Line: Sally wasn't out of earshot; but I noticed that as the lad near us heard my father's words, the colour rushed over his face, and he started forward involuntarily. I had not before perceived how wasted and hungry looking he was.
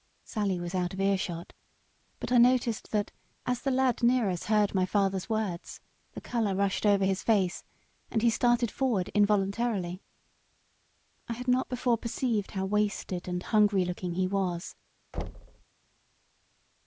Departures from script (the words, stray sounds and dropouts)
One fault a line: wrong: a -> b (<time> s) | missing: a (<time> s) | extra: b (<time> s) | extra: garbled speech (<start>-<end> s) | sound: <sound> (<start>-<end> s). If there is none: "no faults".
wrong: wasn't -> was (0.6 s)
sound: thud (15.1-15.6 s)